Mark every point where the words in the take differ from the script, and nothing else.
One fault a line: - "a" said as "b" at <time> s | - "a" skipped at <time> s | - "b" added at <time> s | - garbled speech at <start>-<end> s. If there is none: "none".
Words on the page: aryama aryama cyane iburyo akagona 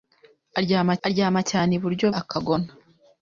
none